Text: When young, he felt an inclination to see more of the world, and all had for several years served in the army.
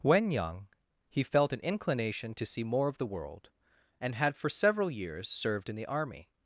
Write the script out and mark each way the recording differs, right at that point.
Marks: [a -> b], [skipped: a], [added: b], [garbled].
When young, he felt an inclination to see more of the world, and [skipped: all] had for several years served in the army.